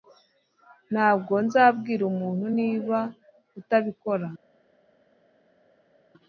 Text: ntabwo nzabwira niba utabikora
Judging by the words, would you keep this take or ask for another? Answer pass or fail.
fail